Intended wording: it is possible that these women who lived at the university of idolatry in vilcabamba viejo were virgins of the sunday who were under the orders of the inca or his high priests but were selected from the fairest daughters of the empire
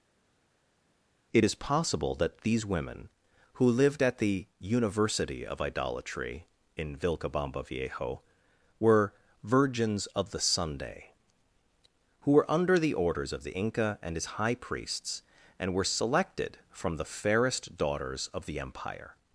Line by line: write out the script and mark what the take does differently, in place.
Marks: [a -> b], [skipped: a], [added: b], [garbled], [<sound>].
it is possible that these women who lived at the university of idolatry in vilcabamba viejo were virgins of the sunday who were under the orders of the inca [or -> and] his high priests [but -> and] were selected from the fairest daughters of the empire